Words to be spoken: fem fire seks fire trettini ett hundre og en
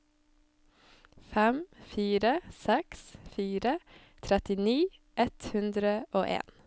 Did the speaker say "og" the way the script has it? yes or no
yes